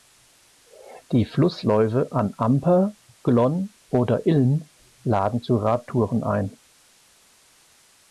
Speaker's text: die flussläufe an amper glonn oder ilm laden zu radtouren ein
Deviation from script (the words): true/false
false